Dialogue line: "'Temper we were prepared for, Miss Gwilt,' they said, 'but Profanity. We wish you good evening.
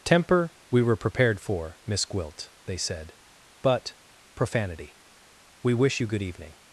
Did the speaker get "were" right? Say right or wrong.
right